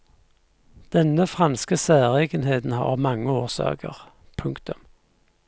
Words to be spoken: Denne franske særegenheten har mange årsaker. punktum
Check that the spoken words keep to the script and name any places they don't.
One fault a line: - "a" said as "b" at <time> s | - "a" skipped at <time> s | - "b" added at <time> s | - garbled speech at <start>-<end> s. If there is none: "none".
none